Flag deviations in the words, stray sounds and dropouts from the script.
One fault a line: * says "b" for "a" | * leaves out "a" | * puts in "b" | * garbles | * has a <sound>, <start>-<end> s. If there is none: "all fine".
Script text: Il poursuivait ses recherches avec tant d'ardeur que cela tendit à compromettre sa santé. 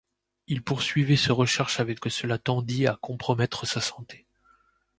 * leaves out "tant d'ardeur"